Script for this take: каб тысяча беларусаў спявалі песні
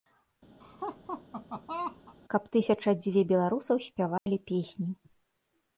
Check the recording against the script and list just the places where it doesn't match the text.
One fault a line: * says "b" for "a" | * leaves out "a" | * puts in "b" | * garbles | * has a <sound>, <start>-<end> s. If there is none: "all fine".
* has a laugh, 0.6-2.1 s
* puts in "дзве"
* has a dropout, 4.2-4.3 s